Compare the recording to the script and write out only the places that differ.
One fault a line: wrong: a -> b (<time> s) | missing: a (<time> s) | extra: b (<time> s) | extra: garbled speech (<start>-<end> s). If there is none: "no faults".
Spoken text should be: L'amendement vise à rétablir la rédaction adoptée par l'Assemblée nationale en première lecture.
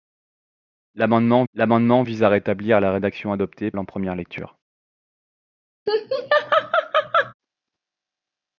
extra: l'amendement (1.5 s)
missing: par l'Assemblée nationale (3.7 s)